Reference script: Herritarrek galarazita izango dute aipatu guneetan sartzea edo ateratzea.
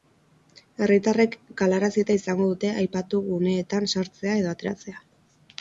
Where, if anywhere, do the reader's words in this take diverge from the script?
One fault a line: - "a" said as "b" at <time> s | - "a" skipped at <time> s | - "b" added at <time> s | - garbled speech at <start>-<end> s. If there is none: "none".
none